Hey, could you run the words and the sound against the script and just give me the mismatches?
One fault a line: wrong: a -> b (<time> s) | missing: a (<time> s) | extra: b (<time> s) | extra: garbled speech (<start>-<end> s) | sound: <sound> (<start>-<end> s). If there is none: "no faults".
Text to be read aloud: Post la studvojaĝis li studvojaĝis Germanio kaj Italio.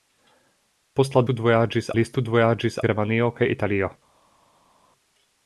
no faults